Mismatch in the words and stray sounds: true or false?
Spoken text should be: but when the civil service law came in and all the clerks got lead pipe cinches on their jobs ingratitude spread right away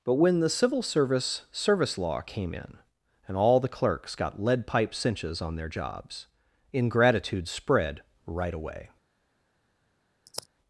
true